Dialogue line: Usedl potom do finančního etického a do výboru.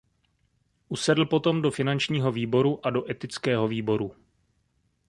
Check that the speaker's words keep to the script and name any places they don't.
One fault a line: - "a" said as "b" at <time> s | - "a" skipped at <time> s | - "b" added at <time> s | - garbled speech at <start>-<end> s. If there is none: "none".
- "etického" said as "výboru" at 2.3 s
- "etického" added at 3.1 s